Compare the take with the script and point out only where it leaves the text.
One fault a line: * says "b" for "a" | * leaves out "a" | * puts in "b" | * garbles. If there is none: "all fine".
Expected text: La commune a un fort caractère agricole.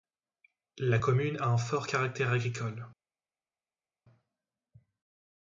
all fine